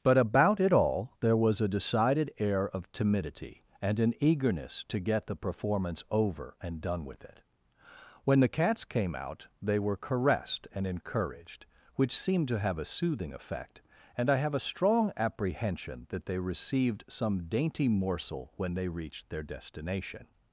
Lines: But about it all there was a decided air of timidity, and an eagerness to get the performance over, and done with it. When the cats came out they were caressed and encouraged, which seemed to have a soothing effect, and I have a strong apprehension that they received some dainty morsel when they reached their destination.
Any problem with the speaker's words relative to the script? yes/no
no